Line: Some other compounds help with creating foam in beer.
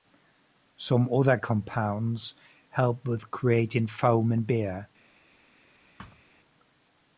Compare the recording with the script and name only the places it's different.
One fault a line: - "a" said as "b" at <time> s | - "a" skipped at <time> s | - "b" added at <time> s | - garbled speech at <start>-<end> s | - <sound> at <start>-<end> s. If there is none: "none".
- thud at 6.0-6.2 s